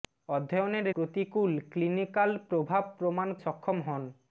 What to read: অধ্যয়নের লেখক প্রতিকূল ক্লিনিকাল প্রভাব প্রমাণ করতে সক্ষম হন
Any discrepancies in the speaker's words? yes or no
yes